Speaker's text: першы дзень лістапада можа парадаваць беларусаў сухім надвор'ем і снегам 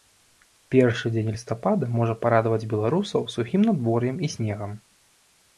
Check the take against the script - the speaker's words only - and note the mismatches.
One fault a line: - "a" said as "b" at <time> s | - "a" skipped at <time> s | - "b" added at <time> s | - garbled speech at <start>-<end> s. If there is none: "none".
none